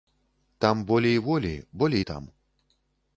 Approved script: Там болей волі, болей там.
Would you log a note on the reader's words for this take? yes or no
no